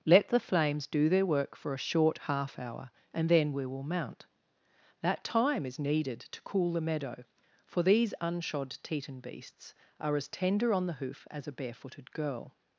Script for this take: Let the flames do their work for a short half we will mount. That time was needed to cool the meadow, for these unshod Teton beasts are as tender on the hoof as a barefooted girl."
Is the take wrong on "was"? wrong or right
wrong